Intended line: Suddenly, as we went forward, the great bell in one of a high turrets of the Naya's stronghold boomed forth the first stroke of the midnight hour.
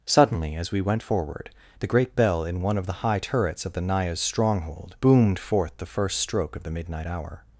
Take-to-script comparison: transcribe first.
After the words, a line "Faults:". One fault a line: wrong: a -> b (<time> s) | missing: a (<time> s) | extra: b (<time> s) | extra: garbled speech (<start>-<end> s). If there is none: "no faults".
Suddenly, as we went forward, the great bell in one of the high turrets of the Naya's stronghold boomed forth the first stroke of the midnight hour.
Faults:
wrong: a -> the (2.9 s)